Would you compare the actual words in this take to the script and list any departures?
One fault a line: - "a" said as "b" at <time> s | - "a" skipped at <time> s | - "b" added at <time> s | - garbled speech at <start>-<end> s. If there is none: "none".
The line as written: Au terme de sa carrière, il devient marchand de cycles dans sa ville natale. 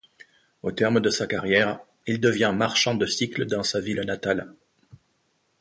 none